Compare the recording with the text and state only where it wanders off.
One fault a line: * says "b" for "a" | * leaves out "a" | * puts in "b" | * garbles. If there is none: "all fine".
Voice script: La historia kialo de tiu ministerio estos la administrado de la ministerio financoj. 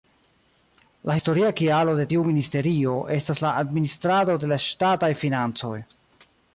* says "estas" for "estos"
* says "ŝtataj" for "ministerio"